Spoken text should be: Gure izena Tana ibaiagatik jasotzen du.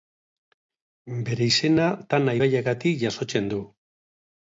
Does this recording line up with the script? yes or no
no